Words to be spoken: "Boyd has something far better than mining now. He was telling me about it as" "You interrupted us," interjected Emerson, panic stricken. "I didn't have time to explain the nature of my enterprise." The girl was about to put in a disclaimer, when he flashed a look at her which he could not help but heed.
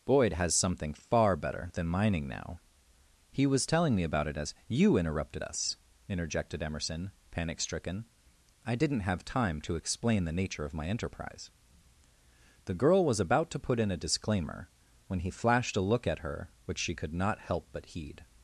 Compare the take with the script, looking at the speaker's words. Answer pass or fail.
fail